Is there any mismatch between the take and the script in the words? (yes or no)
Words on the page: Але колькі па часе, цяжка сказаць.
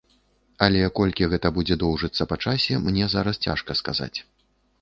yes